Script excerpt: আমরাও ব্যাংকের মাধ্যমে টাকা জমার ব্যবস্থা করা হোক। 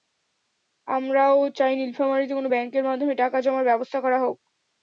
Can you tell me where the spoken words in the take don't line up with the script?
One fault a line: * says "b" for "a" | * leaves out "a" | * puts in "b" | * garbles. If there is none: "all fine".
* puts in "চাই নীলফামারীতে কোনো"